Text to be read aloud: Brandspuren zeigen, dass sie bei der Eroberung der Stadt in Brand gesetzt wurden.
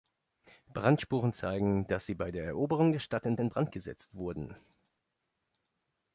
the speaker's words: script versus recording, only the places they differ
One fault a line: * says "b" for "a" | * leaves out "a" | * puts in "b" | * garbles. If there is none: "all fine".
* puts in "in"